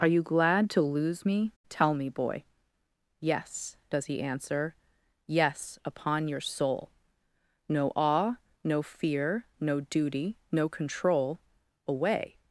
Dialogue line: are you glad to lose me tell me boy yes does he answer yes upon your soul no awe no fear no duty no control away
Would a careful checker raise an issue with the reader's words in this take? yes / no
no